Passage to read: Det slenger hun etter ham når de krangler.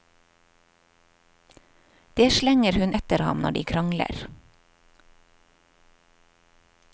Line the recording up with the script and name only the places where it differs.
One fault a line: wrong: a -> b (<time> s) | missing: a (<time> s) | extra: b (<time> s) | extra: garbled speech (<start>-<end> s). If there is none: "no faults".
no faults